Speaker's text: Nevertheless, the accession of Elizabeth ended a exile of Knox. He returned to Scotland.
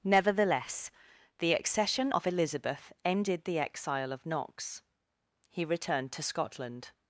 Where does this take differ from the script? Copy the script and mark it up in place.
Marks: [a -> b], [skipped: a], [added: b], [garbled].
Nevertheless, the accession of Elizabeth ended [a -> the] exile of Knox. He returned to Scotland.